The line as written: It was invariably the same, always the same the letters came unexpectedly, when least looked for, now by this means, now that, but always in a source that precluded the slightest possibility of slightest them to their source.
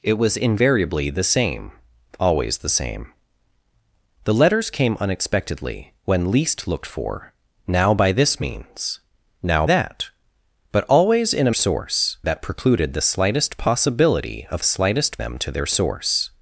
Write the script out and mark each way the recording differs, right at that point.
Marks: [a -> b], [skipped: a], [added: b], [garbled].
It was invariably the same, always the same the letters came unexpectedly, when least looked for, now by this means, now that, but always in a source that precluded the slightest possibility of slightest them to their source.